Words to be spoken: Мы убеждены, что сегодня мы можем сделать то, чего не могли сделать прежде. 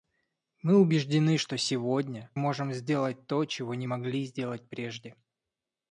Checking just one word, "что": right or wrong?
right